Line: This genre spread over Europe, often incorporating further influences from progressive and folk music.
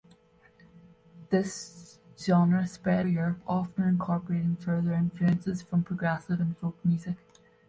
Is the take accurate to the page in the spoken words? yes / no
no